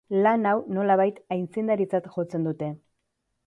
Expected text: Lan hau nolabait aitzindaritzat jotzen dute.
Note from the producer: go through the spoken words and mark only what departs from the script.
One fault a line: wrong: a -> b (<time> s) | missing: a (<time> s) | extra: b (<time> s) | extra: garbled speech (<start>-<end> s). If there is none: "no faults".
no faults